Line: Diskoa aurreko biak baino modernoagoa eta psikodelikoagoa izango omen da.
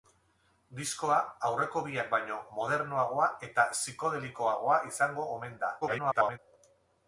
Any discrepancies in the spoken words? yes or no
yes